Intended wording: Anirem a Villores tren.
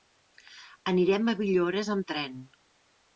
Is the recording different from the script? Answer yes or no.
yes